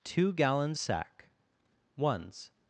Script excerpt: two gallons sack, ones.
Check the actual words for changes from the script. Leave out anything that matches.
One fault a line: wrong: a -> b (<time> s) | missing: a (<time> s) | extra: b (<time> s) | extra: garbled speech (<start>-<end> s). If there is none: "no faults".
no faults